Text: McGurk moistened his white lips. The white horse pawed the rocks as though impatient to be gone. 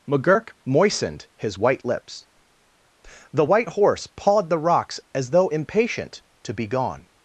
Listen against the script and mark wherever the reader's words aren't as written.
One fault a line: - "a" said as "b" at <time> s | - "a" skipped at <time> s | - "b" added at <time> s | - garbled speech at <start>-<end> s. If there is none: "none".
none